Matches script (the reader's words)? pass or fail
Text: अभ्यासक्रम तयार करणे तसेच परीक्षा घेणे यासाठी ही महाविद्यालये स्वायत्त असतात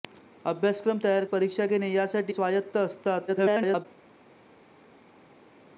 fail